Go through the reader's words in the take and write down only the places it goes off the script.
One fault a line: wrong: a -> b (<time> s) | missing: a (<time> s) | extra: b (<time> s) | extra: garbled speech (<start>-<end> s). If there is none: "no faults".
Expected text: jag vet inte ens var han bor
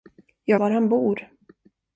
missing: vet inte ens (0.6 s)